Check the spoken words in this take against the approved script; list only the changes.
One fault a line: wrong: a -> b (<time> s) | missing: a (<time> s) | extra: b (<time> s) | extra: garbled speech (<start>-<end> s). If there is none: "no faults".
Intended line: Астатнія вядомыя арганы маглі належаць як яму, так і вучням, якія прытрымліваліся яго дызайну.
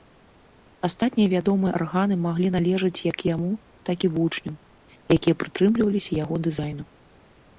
no faults